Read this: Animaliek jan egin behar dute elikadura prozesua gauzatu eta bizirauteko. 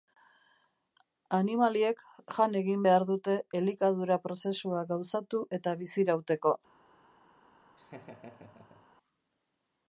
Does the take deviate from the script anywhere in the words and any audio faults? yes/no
yes